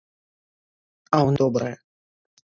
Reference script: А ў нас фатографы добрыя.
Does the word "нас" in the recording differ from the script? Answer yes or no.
yes